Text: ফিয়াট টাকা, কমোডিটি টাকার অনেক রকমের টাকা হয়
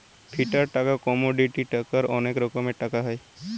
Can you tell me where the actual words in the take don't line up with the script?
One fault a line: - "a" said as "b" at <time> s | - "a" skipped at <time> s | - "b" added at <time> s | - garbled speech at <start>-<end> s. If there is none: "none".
none